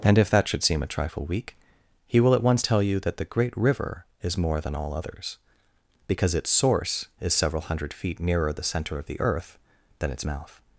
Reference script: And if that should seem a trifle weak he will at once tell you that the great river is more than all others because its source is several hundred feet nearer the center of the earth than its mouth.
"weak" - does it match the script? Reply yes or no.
yes